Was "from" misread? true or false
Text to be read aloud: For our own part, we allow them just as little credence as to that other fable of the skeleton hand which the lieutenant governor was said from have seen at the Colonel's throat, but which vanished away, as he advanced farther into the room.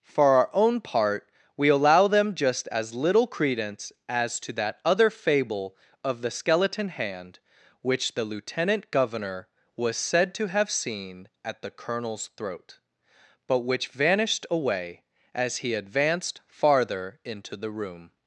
true